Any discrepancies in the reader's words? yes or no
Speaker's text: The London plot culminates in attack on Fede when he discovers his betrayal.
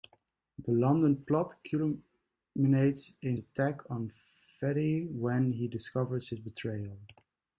no